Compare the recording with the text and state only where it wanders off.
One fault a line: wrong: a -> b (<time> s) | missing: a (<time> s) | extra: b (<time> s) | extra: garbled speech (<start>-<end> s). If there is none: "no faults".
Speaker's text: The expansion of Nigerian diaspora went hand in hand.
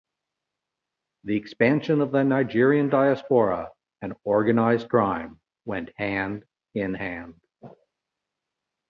extra: the (2.1 s)
extra: and organized crime (4.0 s)